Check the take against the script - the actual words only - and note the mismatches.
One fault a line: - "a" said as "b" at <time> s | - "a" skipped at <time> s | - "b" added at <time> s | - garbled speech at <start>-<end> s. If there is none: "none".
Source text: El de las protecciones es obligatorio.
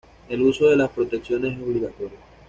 - "uso" added at 0.4 s